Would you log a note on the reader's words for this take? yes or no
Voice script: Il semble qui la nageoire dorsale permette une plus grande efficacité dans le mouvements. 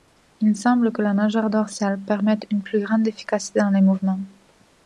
yes